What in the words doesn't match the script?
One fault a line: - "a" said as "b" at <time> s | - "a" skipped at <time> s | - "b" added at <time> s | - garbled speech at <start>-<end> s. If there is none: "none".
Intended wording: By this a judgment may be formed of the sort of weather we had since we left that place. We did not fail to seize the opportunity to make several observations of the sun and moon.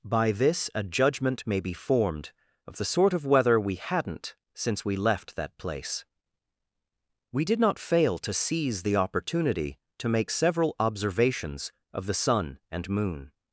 - "had" said as "hadn't" at 3.8 s